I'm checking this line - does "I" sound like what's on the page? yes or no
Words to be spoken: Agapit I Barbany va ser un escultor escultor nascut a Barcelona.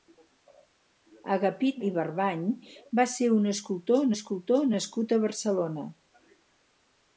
yes